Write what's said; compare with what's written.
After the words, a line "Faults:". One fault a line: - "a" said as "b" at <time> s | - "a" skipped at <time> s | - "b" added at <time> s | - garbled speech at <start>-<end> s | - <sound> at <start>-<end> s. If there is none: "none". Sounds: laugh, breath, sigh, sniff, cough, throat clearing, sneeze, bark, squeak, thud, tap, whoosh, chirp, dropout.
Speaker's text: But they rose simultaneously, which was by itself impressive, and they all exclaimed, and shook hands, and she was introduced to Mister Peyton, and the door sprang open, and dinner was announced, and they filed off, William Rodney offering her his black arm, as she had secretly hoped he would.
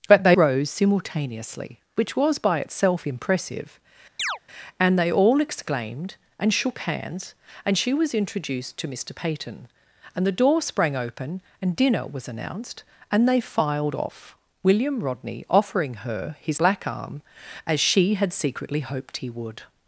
But they rose simultaneously, which was by itself impressive, and they all exclaimed, and shook hands, and she was introduced to Mister Peyton, and the door sprang open, and dinner was announced, and they filed off, William Rodney offering her his black arm, as she had secretly hoped he would.
Faults:
- chirp at 4.2-4.4 s